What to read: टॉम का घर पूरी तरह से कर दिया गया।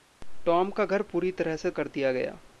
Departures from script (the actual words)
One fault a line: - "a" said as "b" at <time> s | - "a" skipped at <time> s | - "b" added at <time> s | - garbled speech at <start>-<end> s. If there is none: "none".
none